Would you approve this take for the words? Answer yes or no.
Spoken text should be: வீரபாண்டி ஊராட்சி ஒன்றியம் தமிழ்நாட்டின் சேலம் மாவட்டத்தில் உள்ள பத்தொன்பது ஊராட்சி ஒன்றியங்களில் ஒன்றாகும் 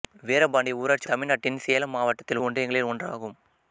no